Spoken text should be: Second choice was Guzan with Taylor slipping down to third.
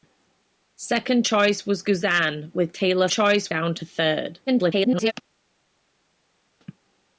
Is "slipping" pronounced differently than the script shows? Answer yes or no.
yes